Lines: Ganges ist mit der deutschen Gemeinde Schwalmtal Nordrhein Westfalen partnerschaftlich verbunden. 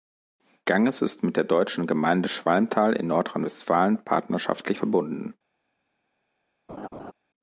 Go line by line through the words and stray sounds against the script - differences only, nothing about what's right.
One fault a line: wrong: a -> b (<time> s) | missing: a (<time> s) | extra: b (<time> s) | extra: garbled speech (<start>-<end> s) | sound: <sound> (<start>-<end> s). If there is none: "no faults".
extra: in (2.9 s)
sound: laugh (6.7-7.1 s)